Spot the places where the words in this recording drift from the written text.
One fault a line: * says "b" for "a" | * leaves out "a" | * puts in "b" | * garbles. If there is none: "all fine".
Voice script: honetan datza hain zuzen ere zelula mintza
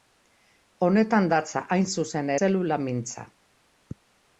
* leaves out "ere"